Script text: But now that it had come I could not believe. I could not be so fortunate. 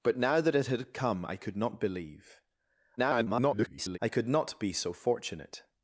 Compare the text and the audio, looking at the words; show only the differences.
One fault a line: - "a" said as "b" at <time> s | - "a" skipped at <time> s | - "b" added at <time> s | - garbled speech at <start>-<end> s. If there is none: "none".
- garbled speech at 3.0-4.0 s